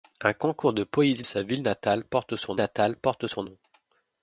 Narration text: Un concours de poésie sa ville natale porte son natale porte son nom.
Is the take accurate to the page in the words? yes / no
yes